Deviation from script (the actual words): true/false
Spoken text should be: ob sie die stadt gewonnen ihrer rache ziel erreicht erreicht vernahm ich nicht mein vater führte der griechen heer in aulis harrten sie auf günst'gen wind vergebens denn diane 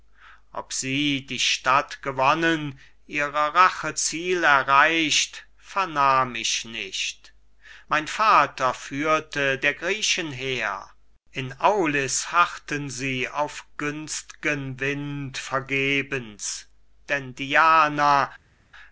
true